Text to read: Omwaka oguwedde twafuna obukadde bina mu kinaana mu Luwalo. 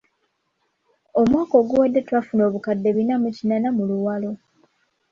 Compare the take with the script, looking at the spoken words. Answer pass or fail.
pass